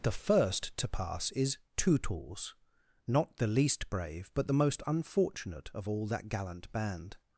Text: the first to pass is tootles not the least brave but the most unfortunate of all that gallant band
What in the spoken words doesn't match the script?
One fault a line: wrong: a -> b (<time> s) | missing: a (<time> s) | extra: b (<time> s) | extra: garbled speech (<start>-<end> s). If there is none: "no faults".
no faults